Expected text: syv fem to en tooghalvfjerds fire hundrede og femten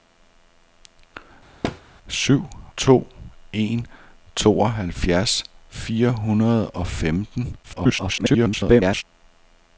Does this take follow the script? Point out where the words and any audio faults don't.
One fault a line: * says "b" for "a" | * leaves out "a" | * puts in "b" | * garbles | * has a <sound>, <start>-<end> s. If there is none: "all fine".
* has a thud, 1.6-1.8 s
* leaves out "fem"
* garbles